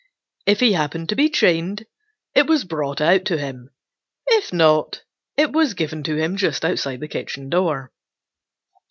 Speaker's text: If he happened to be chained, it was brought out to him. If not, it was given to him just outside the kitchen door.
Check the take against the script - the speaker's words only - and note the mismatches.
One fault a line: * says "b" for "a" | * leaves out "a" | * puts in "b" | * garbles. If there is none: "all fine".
all fine